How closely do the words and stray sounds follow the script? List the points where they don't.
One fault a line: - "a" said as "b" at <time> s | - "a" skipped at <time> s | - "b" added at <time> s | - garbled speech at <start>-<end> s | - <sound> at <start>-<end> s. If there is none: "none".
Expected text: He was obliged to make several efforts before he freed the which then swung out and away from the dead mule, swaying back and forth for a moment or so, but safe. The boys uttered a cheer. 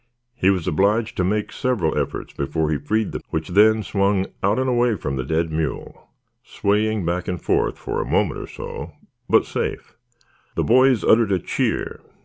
none